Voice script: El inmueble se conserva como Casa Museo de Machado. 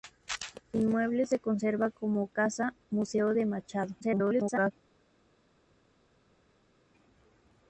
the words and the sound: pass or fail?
fail